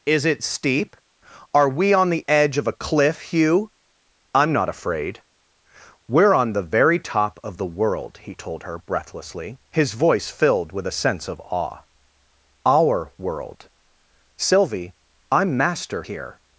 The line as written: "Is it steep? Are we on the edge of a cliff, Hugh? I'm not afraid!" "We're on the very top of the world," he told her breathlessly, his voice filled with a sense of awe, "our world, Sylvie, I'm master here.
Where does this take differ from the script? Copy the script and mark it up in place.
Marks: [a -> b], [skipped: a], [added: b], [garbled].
"Is it steep? Are we on the edge of a cliff, Hugh? I'm not afraid!" "We're on the very top of the world," he told her breathlessly, his voice filled with a sense of awe, "our world, Sylvie, I'm master here.